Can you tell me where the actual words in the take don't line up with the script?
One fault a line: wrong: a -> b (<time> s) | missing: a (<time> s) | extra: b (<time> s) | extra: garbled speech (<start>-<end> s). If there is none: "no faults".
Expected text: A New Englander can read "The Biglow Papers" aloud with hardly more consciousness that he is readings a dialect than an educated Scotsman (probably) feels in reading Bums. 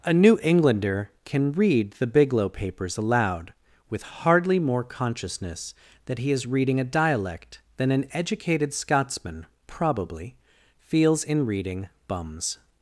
wrong: readings -> reading (6.5 s)